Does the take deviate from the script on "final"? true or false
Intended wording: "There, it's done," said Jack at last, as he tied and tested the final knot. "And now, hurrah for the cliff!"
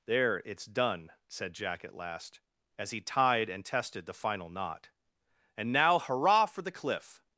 false